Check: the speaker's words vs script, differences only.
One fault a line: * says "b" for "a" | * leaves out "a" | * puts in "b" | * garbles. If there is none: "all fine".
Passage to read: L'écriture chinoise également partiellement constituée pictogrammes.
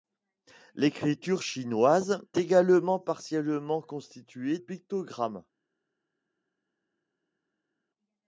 all fine